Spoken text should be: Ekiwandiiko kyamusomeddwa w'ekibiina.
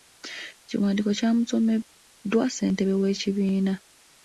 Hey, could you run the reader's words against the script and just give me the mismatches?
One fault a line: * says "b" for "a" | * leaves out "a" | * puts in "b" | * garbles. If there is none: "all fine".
* puts in "ssentebe"